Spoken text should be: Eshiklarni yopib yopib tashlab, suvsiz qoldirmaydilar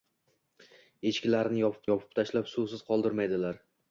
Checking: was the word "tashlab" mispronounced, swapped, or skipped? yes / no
no